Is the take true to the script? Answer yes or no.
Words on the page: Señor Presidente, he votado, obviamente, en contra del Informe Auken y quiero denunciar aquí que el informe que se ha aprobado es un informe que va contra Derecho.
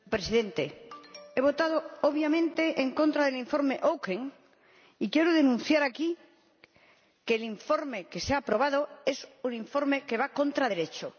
yes